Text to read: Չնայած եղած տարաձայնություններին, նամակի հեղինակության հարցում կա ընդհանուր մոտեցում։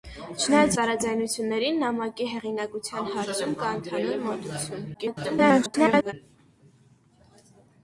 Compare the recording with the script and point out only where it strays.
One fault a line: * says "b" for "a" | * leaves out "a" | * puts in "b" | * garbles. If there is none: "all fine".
* leaves out "եղած"
* garbles